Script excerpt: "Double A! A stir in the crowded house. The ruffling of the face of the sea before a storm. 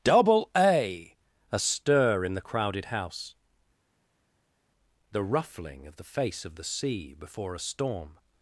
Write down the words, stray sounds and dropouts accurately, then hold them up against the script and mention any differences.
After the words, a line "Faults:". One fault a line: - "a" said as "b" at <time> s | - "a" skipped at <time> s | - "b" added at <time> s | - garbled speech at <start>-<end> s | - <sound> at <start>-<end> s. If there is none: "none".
"Double A! A stir in the crowded house. The ruffling of the face of the sea before a storm.
Faults:
none